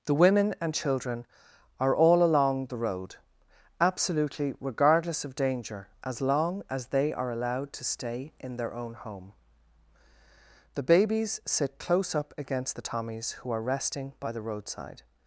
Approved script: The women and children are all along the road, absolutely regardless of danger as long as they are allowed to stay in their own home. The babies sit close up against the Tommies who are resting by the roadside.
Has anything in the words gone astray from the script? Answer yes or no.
no